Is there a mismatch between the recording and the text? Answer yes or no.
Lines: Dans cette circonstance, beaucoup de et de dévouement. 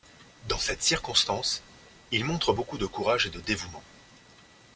yes